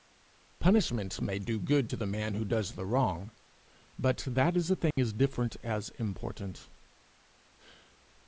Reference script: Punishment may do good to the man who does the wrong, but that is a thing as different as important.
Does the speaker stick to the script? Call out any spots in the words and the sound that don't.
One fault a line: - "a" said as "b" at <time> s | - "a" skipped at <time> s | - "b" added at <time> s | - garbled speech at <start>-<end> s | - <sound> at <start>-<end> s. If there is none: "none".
- dropout at 4.9-5.0 s